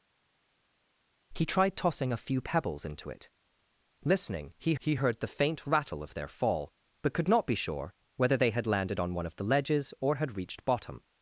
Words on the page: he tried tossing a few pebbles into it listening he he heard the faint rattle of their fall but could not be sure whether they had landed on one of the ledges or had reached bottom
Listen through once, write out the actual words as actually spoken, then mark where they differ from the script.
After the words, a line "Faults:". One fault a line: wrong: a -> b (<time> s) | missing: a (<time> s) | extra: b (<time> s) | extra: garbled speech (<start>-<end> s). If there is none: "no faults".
he tried tossing a few pebbles into it listening he he heard the faint rattle of their fall but could not be sure whether they had landed on one of the ledges or had reached bottom
Faults:
no faults